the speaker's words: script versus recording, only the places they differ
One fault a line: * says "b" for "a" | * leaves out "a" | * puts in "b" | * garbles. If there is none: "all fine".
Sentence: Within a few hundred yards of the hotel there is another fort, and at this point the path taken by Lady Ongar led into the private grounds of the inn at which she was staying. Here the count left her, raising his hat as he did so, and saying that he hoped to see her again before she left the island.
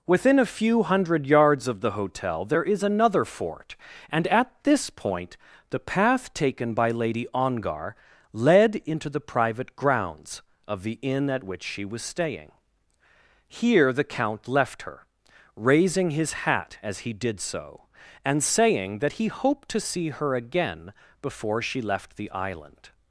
all fine